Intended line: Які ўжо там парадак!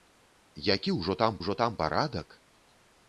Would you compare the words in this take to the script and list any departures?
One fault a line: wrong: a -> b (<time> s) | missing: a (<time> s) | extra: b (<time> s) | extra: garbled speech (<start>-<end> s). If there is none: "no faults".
extra: ўжо там (1.4 s)